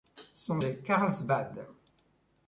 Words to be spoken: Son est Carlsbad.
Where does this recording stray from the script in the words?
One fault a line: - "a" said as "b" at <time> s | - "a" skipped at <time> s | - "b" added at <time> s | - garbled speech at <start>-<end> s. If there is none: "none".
none